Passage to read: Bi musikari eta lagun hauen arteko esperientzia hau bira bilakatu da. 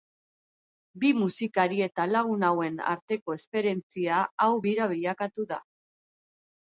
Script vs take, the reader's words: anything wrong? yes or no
no